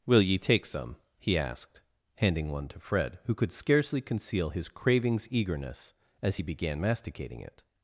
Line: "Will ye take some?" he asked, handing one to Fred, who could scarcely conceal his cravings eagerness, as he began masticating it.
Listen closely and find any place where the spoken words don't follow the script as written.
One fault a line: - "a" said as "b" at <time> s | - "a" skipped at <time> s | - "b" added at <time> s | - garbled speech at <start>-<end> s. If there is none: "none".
none